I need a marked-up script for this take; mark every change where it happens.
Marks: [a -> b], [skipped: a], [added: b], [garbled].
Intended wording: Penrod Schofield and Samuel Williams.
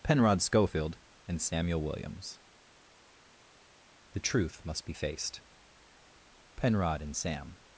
Penrod Schofield and Samuel Williams. [added: The truth must be faced Penrod and Sam]